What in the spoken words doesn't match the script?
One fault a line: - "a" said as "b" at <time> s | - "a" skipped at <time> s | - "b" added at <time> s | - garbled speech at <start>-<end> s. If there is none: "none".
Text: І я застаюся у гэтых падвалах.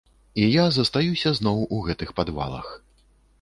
- "зноў" added at 1.4 s